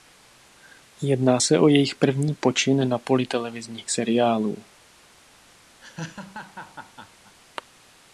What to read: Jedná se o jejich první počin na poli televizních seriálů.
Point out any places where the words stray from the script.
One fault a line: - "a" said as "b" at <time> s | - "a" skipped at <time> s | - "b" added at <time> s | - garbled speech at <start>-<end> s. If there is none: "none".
none